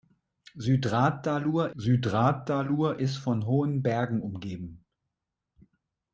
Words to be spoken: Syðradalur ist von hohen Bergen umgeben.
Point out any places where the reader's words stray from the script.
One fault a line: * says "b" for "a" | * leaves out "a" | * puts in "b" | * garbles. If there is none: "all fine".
* puts in "syðradalur"